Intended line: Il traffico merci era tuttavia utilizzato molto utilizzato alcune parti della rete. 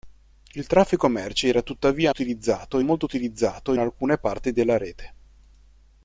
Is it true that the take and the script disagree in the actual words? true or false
false